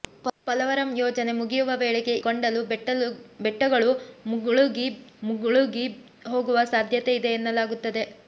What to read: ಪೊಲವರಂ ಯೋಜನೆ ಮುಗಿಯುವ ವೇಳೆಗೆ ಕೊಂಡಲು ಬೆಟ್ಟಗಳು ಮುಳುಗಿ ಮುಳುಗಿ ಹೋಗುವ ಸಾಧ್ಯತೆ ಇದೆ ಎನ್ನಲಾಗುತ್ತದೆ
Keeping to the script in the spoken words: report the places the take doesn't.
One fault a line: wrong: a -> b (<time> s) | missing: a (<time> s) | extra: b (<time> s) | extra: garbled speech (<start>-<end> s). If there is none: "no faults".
no faults